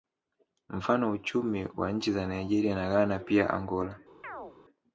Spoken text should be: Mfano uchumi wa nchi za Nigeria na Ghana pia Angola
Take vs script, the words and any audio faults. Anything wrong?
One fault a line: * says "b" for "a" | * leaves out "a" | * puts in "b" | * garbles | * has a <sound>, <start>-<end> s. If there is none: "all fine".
* has a chirp, 4.2-4.6 s